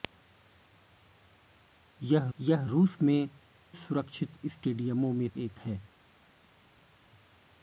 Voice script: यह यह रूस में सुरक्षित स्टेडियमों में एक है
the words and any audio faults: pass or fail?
pass